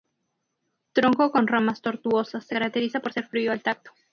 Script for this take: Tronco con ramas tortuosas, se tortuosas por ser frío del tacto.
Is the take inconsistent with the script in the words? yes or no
yes